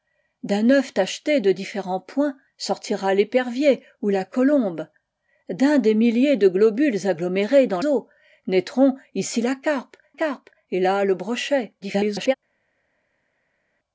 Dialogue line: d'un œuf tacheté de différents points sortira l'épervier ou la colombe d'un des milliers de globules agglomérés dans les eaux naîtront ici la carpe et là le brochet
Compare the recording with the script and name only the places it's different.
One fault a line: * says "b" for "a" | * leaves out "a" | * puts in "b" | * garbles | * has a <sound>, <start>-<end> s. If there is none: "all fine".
* leaves out "les"
* puts in "carpe"
* garbles